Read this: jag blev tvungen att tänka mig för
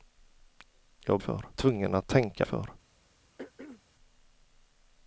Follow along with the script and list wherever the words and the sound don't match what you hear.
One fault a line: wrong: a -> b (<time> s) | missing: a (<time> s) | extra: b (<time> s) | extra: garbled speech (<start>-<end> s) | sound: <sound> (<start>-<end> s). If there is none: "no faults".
wrong: blev -> för (1.2 s)
missing: mig (2.5 s)
sound: throat clearing (3.4-3.8 s)